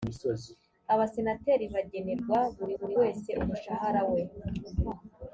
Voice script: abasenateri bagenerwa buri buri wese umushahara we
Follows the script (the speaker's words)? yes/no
yes